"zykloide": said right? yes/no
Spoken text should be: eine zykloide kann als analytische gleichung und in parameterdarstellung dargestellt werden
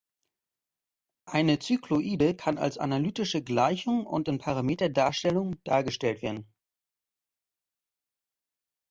yes